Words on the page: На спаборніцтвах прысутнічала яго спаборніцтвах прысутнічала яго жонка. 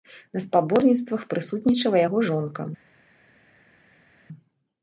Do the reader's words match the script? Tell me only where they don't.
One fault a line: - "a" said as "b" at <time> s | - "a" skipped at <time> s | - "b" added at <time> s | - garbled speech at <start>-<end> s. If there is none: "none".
- "спаборніцтвах прысутнічала яго" skipped at 2.2 s